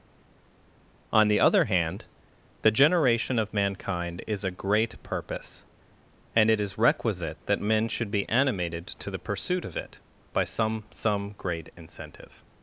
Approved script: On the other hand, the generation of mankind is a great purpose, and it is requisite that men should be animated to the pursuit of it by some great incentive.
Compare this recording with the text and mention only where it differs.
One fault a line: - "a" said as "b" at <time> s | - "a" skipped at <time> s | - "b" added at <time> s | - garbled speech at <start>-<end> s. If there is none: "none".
- "some" added at 10.9 s